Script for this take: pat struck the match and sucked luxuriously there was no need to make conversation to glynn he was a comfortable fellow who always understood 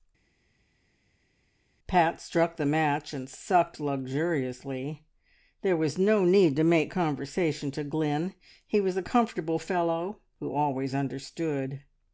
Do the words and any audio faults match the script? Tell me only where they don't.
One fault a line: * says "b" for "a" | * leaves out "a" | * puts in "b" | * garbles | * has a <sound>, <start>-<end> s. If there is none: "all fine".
all fine